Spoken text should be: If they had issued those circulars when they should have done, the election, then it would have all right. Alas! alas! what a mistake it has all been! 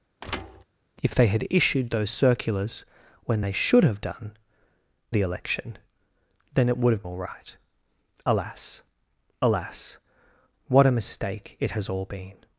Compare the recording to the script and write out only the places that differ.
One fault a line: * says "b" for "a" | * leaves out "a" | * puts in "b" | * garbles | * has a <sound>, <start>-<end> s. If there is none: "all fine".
* has a thud, 0.2-0.6 s